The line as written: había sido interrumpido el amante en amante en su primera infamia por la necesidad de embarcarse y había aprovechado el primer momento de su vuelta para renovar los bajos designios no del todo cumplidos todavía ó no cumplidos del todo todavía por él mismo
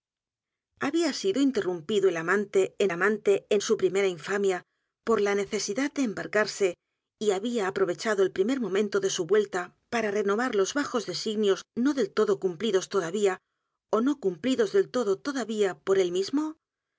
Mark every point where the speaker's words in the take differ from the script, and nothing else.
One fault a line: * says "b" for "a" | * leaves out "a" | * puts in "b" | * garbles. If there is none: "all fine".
all fine